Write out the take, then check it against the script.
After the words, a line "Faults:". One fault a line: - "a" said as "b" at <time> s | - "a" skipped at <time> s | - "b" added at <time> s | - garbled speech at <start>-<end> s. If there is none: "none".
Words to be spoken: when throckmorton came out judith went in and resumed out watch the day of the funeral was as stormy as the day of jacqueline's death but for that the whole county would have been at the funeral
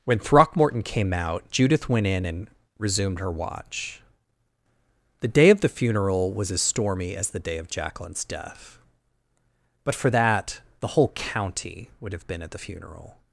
when throckmorton came out judith went in and resumed her watch the day of the funeral was as stormy as the day of jacqueline's death but for that the whole county would have been at the funeral
Faults:
- "out" said as "her" at 3.2 s